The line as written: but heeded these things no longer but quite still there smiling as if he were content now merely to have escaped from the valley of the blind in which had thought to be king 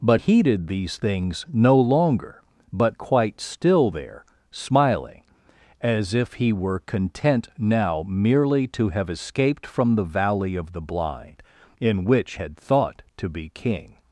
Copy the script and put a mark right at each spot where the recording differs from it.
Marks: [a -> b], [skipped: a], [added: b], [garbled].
but heeded these things no longer but quite still there smiling as if he were content now merely to have escaped from the valley of the blind in which had thought to be king